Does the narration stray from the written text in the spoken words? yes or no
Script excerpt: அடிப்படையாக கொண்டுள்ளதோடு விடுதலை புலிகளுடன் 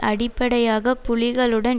yes